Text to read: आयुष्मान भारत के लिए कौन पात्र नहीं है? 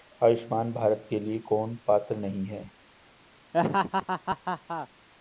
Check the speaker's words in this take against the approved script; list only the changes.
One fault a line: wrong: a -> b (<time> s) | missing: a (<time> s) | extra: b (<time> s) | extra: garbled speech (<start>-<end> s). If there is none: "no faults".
no faults